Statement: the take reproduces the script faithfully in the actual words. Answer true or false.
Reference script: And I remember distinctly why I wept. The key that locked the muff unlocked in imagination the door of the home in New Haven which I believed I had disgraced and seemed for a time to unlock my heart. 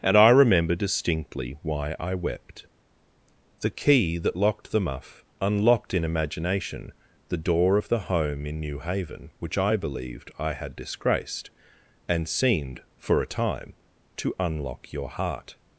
false